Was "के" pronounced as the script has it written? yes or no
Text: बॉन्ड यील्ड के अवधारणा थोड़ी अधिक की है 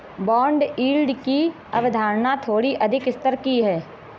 no